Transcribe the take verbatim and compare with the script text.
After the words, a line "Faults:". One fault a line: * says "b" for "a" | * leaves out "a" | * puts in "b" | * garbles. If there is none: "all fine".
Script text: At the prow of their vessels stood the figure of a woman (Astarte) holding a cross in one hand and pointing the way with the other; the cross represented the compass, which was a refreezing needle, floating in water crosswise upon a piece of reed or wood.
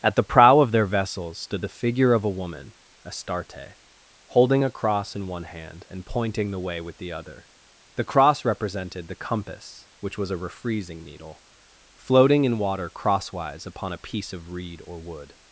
At the prow of their vessels stood the figure of a woman (Astarte) holding a cross in one hand and pointing the way with the other; the cross represented the compass, which was a refreezing needle, floating in water crosswise upon a piece of reed or wood.
Faults:
all fine